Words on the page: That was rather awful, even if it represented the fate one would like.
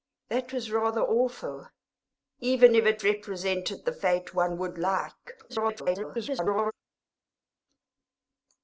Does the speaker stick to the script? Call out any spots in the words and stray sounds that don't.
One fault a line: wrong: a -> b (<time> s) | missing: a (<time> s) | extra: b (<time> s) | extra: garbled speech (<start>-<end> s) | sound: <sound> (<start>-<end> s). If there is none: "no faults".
extra: garbled speech (5.5-6.7 s)